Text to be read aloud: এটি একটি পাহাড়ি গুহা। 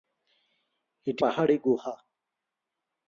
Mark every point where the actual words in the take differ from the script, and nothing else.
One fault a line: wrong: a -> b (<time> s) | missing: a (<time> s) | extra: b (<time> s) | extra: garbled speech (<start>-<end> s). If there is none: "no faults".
missing: একটি (1.2 s)